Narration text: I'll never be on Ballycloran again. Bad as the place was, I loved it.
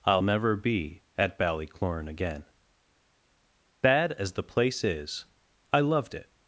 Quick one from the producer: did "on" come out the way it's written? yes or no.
no